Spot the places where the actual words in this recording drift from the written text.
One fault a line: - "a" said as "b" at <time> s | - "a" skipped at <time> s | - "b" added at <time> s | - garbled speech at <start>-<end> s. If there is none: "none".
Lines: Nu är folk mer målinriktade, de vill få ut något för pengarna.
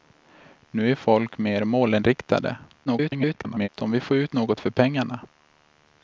- garbled speech at 2.9-3.7 s